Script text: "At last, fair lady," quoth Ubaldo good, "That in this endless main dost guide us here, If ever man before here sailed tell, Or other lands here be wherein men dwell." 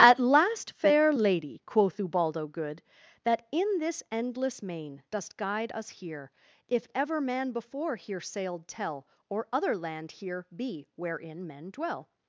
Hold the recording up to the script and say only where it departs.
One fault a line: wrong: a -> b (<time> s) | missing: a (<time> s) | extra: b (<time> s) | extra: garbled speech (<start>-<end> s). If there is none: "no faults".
wrong: lands -> land (9.8 s)